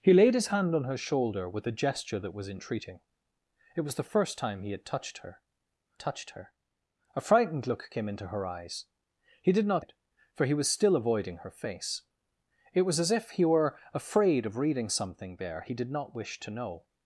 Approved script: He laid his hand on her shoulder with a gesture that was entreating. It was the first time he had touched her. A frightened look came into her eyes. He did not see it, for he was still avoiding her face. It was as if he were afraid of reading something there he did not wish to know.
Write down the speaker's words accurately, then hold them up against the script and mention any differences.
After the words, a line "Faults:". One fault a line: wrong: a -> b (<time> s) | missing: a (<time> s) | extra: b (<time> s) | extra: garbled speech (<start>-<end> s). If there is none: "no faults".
He laid his hand on her shoulder with a gesture that was entreating. It was the first time he had touched her touched her. A frightened look came into her eyes. He did not it, for he was still avoiding her face. It was as if he were afraid of reading something there he did not wish to know.
Faults:
extra: touched her (6.0 s)
missing: see (9.9 s)